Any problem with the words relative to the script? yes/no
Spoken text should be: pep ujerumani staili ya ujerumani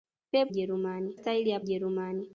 no